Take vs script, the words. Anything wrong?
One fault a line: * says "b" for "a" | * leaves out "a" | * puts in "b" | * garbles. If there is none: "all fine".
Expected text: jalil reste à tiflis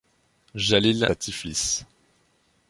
* leaves out "reste"